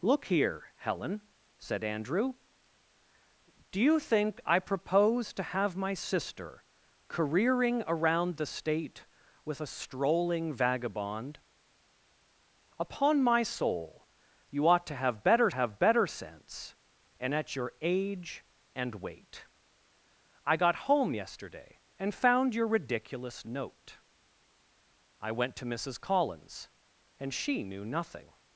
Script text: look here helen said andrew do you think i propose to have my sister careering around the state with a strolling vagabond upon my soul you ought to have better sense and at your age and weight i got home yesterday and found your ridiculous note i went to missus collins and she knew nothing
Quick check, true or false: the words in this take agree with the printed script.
false